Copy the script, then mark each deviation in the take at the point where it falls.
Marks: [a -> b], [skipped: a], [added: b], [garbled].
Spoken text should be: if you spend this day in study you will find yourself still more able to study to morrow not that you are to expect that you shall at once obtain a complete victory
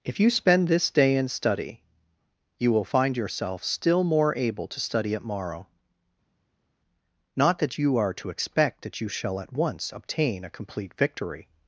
if you spend this day in study you will find yourself still more able to study [to -> at] morrow not that you are to expect that you shall at once obtain a complete victory